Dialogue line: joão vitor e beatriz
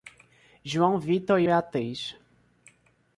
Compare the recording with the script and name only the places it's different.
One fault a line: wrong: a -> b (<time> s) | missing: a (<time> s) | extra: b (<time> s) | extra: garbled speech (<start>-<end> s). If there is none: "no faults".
no faults